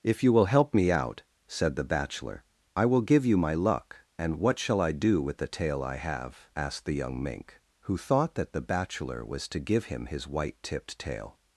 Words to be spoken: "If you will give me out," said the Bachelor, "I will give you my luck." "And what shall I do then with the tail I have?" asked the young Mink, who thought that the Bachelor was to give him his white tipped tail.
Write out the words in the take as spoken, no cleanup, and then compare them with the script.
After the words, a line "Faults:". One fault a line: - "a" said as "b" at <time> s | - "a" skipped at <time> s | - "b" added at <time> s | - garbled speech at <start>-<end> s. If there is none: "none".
"If you will help me out," said the Bachelor, "I will give you my luck." "And what shall I do with the tail I have?" asked the young Mink, who thought that the Bachelor was to give him his white tipped tail.
Faults:
- "give" said as "help" at 0.5 s
- "then" skipped at 5.2 s